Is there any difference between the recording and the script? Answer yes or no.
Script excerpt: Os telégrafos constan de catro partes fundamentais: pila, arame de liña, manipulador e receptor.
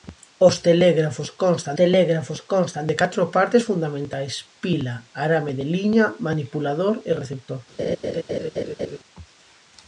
yes